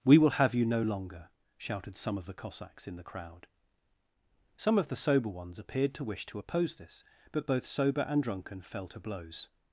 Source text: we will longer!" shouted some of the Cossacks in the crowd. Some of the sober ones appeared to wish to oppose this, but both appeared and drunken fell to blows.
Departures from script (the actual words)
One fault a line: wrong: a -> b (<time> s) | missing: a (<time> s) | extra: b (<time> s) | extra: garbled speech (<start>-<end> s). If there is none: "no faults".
extra: have you no (0.3 s)
wrong: appeared -> sober (7.6 s)